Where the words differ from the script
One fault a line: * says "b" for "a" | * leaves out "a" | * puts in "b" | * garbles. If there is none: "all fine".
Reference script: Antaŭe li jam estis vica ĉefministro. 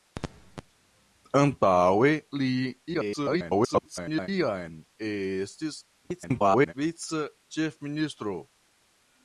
* garbles
* garbles